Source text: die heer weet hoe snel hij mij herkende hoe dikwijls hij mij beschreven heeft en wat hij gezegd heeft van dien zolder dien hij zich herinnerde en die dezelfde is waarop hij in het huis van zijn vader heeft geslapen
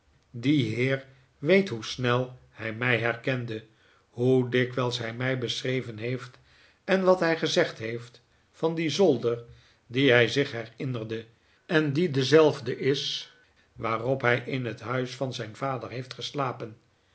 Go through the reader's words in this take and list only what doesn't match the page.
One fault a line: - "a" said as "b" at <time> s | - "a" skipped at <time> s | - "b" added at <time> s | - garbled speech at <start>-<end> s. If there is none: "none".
none